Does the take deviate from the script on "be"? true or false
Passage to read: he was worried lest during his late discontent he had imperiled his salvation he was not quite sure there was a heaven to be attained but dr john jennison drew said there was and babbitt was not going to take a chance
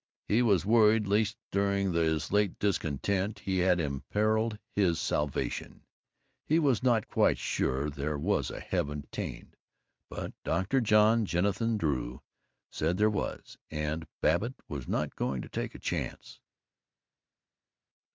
true